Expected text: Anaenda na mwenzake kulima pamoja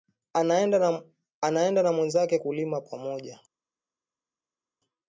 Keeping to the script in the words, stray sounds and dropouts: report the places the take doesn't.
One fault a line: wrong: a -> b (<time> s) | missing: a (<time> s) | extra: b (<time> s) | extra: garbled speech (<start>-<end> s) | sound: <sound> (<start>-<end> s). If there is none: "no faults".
no faults